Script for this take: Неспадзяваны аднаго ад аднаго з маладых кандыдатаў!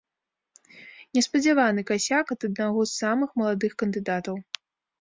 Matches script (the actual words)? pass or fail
fail